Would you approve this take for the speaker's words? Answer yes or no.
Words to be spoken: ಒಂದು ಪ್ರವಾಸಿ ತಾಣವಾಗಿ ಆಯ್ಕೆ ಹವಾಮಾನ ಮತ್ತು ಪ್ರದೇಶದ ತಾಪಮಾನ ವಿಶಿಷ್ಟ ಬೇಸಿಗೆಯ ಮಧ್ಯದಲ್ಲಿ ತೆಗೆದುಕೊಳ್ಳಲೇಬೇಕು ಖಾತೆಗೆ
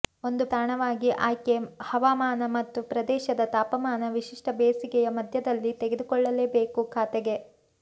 no